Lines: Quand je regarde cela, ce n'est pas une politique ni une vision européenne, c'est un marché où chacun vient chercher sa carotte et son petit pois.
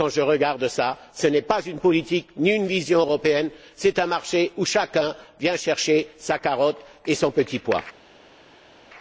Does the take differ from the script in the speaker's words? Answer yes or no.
no